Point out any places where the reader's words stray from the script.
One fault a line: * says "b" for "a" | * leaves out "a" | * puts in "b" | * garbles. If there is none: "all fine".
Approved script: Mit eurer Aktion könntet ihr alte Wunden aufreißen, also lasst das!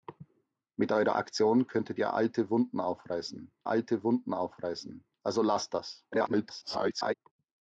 * puts in "alte Wunden aufreißen"
* garbles